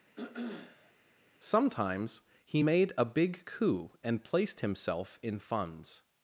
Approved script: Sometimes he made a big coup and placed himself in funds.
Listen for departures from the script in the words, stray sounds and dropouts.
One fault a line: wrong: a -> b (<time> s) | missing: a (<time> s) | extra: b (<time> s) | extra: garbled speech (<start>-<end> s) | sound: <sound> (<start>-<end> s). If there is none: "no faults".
sound: throat clearing (0.2-0.9 s)